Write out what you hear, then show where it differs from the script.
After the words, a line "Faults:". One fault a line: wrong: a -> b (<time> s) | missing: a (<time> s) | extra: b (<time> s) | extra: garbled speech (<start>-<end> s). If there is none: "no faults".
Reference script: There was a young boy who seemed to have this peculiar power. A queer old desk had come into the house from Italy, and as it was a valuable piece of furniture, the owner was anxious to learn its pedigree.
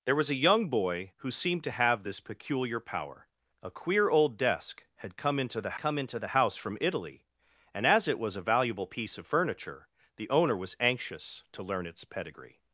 There was a young boy who seemed to have this peculiar power. A queer old desk had come into the come into the house from Italy, and as it was a valuable piece of furniture, the owner was anxious to learn its pedigree.
Faults:
extra: come into the (5.8 s)